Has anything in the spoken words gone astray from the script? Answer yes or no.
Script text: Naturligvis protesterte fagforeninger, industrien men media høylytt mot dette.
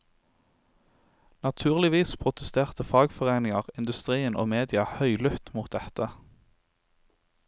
yes